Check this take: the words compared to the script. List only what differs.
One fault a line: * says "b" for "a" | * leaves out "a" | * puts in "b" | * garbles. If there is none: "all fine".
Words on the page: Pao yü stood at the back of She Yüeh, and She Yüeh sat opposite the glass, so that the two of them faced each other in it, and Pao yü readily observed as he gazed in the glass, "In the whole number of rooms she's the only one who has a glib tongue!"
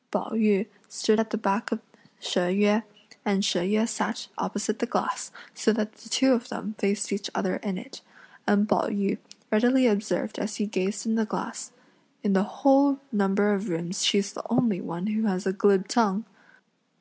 all fine